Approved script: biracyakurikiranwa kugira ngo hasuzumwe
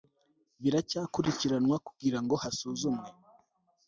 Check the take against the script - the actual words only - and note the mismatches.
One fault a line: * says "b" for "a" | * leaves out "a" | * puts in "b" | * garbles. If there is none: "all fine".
all fine